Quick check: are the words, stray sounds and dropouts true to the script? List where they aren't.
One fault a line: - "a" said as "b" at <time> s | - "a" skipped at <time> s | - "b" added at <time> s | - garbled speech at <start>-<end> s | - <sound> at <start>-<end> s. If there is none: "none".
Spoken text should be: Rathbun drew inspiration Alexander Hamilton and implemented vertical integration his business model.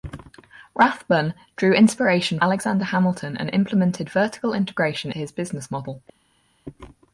none